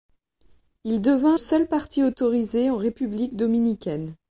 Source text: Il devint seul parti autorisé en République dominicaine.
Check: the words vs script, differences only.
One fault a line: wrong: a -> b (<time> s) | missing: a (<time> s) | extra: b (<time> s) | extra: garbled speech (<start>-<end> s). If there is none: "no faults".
no faults